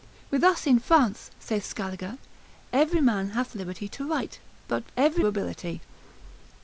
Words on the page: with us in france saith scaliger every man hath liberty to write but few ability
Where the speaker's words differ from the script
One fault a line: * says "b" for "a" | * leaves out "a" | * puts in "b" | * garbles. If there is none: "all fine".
* says "every" for "few"